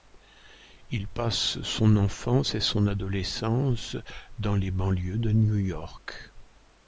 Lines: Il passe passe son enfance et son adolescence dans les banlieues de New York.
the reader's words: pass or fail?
fail